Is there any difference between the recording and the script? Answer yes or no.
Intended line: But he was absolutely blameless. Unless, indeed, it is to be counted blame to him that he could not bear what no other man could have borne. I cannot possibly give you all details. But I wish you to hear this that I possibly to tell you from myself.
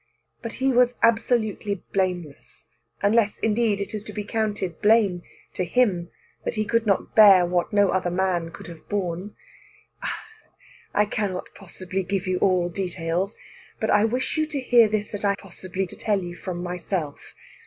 no